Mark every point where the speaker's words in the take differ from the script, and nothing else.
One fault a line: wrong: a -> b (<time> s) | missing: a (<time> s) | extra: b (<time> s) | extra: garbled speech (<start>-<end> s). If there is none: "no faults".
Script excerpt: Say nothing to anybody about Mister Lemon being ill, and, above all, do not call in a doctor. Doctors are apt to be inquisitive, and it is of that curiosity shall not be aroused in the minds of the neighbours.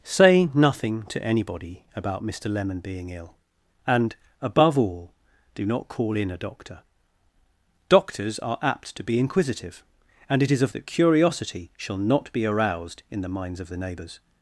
no faults